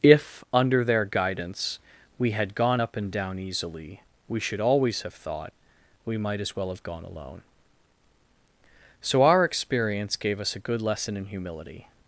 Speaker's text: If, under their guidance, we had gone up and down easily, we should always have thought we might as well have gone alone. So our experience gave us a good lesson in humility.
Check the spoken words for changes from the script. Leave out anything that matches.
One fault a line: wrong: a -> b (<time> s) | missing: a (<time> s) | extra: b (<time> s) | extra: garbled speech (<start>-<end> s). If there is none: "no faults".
no faults